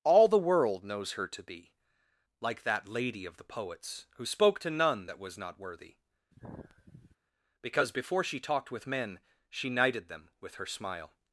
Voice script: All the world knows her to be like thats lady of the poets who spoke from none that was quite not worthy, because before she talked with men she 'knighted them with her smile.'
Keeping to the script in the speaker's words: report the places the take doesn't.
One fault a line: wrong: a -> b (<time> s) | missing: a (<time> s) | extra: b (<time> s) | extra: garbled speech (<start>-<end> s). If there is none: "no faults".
wrong: thats -> that (2.6 s)
wrong: from -> to (4.6 s)
missing: quite (5.4 s)